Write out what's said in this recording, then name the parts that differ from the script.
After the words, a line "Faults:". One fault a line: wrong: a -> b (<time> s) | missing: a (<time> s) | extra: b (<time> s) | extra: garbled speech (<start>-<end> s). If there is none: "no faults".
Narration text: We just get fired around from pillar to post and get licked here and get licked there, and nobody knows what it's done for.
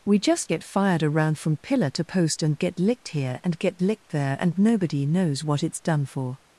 We just get fired around from pillar to post and get licked here and get licked there, and nobody knows what it's done for.
Faults:
no faults